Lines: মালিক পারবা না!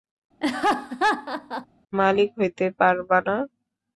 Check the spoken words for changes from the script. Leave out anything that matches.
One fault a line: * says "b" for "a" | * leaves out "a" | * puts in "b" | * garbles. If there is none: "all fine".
* puts in "হইতে"